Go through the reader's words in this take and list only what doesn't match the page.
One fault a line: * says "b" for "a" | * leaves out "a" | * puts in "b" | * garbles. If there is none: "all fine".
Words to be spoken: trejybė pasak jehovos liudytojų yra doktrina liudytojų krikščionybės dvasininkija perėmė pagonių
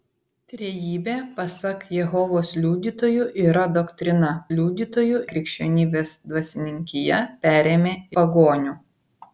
all fine